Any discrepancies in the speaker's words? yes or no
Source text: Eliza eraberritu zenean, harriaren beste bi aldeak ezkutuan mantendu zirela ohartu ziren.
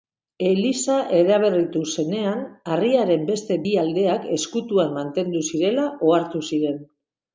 no